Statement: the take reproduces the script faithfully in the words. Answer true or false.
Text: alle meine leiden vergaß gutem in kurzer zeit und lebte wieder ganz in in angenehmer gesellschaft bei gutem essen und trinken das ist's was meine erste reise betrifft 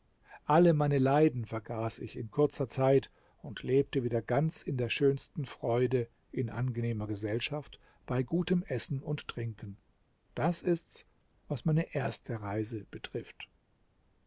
false